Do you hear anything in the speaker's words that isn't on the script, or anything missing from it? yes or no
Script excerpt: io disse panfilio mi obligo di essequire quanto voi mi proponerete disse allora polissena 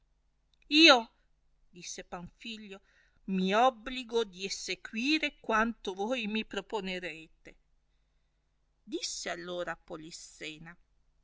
no